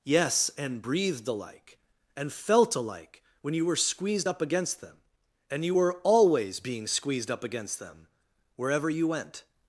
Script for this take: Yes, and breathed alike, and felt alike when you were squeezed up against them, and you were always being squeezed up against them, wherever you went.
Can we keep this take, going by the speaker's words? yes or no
yes